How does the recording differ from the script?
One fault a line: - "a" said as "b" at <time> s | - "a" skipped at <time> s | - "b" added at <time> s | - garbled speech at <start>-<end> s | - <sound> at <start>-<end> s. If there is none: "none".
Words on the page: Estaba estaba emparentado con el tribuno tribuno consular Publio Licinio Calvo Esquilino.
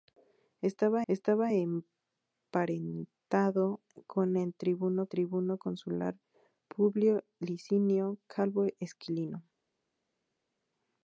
none